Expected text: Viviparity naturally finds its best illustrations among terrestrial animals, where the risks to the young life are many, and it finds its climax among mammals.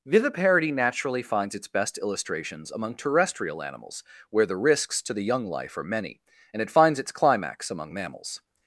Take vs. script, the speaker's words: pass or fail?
pass